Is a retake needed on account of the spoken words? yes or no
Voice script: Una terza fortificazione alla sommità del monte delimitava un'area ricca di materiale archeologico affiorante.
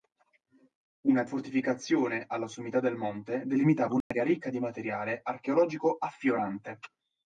yes